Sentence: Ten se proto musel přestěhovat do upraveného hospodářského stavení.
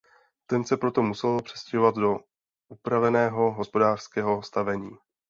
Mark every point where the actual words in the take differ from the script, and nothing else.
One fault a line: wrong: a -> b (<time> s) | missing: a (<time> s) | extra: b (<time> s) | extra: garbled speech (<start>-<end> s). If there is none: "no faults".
no faults